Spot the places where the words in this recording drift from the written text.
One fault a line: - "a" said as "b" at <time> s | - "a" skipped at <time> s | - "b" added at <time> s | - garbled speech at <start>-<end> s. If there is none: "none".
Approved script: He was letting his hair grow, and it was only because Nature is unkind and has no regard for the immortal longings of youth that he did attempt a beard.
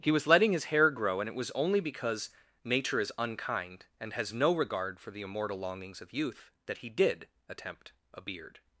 none